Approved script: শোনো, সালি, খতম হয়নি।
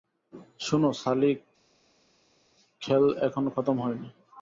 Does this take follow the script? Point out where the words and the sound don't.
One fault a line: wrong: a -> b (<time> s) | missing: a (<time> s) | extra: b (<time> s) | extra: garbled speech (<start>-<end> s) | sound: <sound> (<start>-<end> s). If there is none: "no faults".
extra: খেল এখনো (2.8 s)